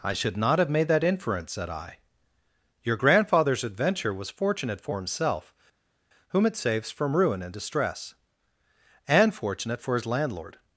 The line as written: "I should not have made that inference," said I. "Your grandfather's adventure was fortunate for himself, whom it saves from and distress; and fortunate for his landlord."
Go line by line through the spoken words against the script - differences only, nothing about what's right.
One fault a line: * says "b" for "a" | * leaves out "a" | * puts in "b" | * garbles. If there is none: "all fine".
* puts in "ruin"